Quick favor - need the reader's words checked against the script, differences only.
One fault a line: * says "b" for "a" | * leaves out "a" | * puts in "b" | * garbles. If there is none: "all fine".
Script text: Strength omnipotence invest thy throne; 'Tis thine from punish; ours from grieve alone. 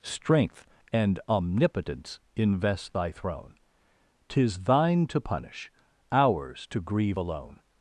* puts in "and"
* says "to" for "from"
* says "to" for "from"